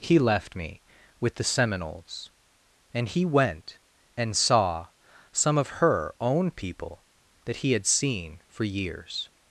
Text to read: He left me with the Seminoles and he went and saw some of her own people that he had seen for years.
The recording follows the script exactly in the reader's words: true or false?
true